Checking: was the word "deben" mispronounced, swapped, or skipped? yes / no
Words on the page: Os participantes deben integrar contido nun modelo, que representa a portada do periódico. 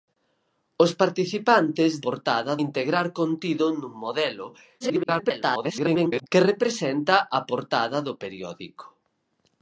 yes